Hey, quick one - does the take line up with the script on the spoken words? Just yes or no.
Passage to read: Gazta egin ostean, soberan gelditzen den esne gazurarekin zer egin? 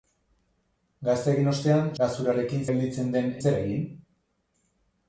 no